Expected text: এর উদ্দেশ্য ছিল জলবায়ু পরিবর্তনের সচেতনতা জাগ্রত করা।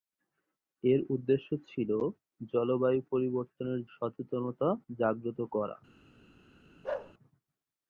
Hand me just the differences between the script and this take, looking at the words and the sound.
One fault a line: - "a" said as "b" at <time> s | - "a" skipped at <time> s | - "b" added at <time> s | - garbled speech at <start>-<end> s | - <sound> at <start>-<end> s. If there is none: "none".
- bark at 6.8-7.1 s